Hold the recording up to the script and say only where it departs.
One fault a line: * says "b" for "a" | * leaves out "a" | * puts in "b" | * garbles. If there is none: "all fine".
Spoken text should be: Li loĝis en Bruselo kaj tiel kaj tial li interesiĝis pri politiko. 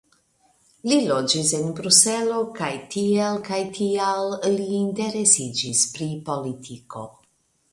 all fine